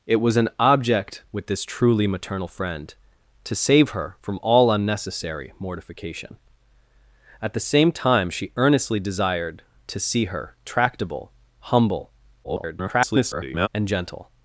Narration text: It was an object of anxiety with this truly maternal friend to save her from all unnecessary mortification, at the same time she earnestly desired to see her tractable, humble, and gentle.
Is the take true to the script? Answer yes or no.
no